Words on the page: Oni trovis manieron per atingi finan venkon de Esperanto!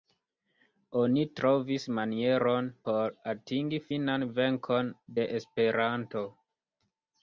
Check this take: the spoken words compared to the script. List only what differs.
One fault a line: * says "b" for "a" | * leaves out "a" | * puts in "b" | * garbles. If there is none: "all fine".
* says "por" for "per"